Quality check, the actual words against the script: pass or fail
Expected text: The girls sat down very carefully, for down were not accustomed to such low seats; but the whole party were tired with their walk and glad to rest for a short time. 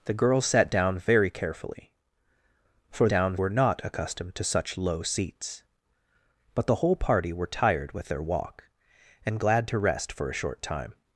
pass